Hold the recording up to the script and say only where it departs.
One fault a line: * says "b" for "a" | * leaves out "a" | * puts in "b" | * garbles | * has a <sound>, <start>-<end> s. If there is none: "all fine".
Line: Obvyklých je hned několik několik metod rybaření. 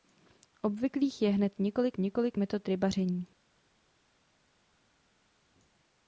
all fine